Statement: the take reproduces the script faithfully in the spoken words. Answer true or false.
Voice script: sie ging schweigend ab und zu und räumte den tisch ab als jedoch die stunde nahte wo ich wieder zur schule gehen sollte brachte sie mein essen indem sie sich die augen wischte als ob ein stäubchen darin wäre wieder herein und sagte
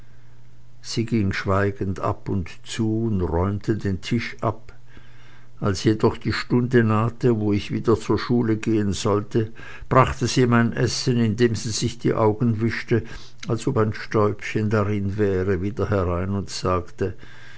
true